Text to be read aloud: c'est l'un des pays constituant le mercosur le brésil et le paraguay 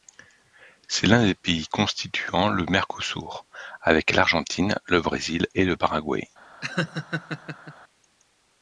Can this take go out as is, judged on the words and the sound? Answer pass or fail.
fail